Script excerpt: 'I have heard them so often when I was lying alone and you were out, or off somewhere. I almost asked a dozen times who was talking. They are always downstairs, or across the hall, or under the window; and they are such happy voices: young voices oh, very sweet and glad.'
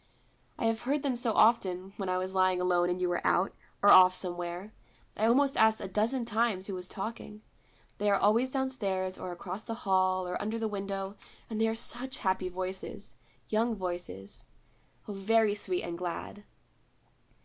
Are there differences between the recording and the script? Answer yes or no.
no